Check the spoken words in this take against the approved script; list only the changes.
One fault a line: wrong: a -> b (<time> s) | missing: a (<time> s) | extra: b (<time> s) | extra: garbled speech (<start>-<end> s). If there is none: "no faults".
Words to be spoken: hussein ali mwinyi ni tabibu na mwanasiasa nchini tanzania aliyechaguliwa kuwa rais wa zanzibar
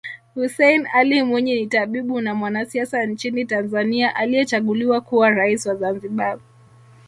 no faults